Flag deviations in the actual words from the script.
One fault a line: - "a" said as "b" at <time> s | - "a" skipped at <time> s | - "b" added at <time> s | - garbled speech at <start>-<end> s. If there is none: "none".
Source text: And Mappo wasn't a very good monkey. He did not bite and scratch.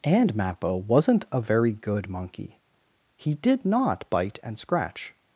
none